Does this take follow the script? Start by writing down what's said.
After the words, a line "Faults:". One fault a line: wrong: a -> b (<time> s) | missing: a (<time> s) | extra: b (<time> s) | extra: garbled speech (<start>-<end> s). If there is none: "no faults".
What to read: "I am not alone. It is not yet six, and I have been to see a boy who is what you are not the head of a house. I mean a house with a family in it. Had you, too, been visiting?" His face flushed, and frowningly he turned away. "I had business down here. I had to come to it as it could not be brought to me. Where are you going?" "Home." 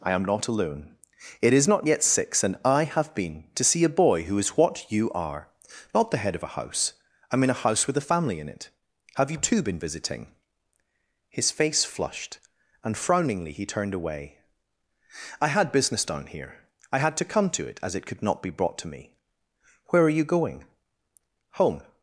"I am not alone. It is not yet six, and I have been to see a boy who is what you are not the head of a house. I mean a house with a family in it. Have you, too, been visiting?" His face flushed, and frowningly he turned away. "I had business down here. I had to come to it as it could not be brought to me. Where are you going?" "Home."
Faults:
wrong: Had -> Have (9.2 s)